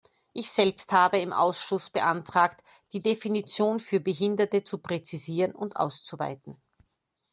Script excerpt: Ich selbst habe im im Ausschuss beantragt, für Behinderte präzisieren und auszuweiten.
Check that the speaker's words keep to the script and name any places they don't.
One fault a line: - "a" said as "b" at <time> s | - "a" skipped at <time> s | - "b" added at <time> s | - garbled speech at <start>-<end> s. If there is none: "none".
- "im" skipped at 1.3 s
- "die Definition" added at 2.9 s
- "zu" added at 4.6 s